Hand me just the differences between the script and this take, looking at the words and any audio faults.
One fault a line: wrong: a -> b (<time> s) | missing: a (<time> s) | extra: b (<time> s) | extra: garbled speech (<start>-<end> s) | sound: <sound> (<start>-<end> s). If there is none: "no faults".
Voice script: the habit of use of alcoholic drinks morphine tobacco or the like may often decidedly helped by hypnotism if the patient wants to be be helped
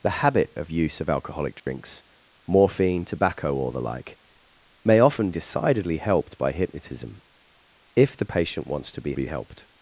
sound: dropout (1.6-1.7 s)